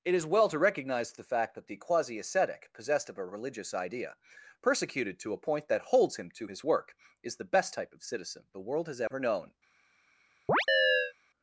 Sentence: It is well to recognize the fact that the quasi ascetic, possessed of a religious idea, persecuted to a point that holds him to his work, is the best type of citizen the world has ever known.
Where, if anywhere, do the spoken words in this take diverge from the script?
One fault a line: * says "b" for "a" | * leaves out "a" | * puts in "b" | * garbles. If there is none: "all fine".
all fine